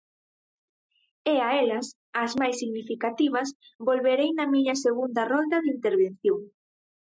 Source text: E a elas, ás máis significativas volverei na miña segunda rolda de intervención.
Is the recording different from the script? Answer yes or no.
no